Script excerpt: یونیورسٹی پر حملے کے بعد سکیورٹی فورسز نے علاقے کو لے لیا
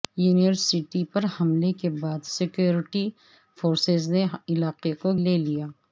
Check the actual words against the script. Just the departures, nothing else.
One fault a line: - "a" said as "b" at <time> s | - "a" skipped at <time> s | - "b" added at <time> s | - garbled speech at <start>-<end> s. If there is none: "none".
none